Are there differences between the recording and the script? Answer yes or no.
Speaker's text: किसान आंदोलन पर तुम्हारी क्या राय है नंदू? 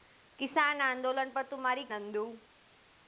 yes